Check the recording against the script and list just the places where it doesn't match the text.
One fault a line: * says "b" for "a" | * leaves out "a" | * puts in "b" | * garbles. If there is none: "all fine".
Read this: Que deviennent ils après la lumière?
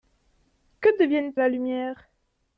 * leaves out "ils après"